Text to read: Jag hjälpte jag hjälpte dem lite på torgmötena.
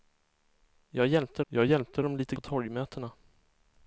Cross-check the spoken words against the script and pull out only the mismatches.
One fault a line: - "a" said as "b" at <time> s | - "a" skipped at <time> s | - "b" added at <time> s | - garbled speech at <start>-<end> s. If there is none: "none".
none